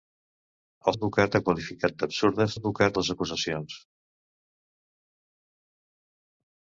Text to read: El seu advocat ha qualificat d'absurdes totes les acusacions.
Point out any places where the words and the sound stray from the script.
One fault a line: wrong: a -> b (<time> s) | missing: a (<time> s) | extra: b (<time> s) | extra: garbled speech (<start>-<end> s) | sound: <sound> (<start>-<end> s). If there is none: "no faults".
missing: seu (0.9 s)
wrong: totes -> advocat (2.5 s)